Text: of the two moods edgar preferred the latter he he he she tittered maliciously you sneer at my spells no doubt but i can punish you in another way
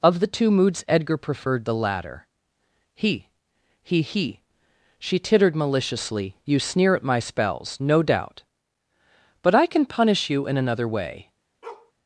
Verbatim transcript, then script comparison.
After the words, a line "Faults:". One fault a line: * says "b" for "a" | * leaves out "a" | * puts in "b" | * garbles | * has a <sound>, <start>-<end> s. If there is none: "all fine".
of the two moods edgar preferred the latter he he he she tittered maliciously you sneer at my spells no doubt but i can punish you in another way
Faults:
* has a bark, 11.6-11.9 s